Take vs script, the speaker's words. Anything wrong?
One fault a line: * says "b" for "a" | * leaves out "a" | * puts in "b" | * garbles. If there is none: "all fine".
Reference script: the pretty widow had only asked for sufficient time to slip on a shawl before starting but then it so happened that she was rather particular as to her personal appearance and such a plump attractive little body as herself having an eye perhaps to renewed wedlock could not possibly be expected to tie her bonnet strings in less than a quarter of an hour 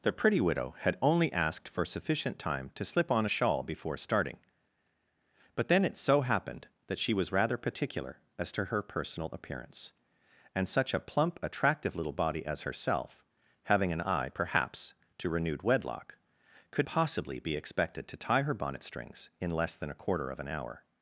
* leaves out "not"